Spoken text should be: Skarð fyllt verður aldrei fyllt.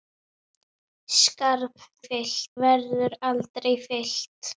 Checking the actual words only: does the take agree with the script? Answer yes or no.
yes